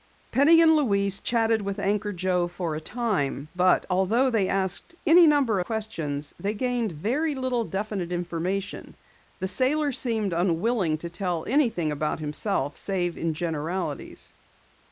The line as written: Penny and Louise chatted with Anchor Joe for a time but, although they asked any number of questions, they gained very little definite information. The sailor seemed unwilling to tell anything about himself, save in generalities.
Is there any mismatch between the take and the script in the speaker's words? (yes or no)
yes